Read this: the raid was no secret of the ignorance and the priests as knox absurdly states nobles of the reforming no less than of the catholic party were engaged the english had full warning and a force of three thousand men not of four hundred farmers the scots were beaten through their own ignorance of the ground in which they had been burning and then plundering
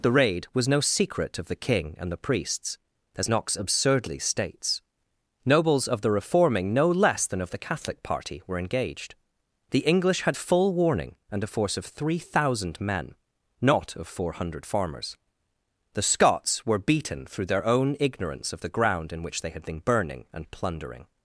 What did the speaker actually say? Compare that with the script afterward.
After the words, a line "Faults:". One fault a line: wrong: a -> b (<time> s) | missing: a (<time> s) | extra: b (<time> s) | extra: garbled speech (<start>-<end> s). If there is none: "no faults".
the raid was no secret of the king and the priests as knox absurdly states nobles of the reforming no less than of the catholic party were engaged the english had full warning and a force of three thousand men not of four hundred farmers the scots were beaten through their own ignorance of the ground in which they had been burning and plundering
Faults:
wrong: ignorance -> king (1.6 s)
missing: then (20.5 s)